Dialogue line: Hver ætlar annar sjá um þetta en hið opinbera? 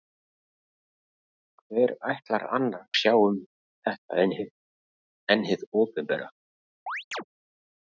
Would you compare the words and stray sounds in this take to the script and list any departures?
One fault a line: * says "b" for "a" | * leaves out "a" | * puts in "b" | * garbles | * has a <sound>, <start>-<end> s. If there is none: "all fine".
* has a chirp, 6.9-7.2 s